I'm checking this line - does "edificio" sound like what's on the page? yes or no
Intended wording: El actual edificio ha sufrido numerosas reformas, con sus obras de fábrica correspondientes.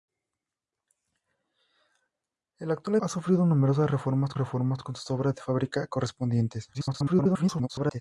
no